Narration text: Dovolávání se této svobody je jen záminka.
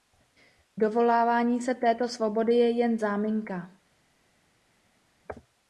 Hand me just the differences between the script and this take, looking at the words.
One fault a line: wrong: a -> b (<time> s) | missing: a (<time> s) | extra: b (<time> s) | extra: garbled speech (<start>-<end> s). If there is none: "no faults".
no faults